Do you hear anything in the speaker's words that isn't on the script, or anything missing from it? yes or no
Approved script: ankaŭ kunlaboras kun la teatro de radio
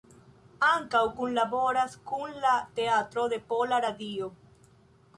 yes